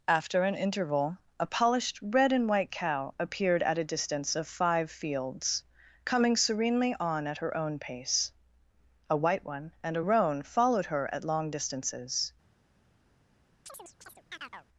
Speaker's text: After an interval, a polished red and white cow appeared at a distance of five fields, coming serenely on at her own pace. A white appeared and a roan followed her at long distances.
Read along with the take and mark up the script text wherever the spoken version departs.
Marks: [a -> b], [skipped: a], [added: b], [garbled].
After an interval, a polished red and white cow appeared at a distance of five fields, coming serenely on at her own pace. A white [appeared -> one] and a roan followed her at long distances.